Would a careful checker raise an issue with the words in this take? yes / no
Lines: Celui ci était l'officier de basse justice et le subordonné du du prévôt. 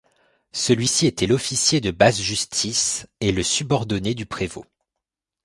yes